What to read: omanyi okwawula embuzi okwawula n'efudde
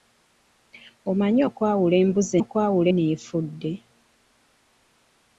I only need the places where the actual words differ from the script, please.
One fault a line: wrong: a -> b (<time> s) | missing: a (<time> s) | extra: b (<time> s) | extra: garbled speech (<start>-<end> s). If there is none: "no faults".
no faults